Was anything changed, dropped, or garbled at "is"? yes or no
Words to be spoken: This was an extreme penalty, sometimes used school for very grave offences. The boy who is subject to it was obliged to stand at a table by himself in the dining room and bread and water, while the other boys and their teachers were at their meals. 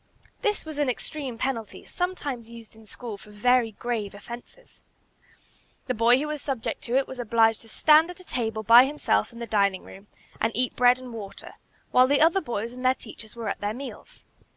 yes